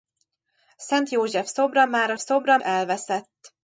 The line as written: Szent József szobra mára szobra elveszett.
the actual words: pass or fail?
pass